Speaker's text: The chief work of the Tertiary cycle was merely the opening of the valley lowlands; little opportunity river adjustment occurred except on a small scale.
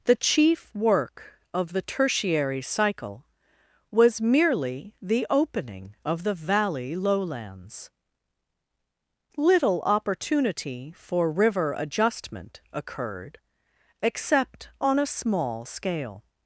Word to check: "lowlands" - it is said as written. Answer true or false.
true